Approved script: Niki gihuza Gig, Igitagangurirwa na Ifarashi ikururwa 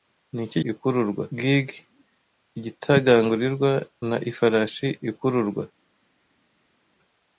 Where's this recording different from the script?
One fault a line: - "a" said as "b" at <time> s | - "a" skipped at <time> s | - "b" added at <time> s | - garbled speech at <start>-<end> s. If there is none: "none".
- "gihuza" said as "ikururwa" at 0.7 s